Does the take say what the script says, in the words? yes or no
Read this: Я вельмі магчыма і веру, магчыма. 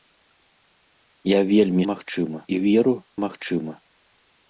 yes